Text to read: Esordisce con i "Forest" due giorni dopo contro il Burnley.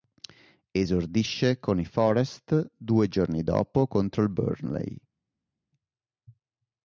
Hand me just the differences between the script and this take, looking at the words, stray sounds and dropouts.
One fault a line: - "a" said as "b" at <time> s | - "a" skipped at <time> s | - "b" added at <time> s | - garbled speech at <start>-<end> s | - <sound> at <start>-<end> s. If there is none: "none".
none